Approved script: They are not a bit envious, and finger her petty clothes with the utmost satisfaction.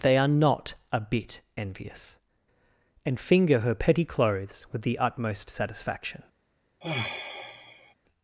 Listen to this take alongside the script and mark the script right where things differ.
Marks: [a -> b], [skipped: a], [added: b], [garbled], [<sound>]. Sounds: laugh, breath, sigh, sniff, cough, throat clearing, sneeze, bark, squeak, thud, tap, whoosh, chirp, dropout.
They are not a bit envious, and finger her petty clothes with the utmost satisfaction. [sigh]